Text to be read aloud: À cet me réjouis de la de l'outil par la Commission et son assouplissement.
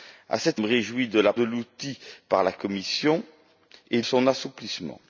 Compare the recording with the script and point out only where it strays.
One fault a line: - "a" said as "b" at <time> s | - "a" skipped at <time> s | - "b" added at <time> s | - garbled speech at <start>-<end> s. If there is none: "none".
none